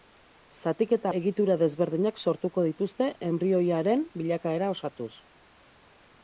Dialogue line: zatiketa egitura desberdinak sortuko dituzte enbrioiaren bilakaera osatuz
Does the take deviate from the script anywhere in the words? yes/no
no